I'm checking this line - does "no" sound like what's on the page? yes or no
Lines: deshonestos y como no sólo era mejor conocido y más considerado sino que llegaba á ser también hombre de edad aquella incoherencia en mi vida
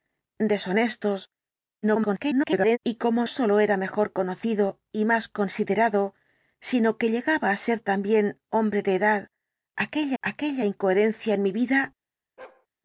no